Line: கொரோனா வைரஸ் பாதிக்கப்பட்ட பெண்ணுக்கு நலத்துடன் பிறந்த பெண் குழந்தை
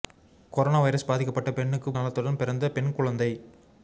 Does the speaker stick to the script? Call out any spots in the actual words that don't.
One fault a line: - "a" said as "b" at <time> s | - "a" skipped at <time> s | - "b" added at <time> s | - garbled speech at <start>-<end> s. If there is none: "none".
none